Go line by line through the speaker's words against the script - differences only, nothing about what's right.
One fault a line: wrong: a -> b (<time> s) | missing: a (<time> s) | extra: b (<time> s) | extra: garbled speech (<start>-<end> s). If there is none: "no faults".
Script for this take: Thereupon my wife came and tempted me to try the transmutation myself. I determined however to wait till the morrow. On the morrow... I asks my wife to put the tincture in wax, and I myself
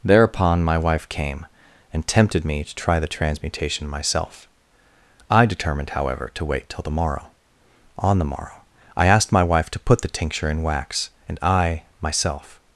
wrong: asks -> asked (9.1 s)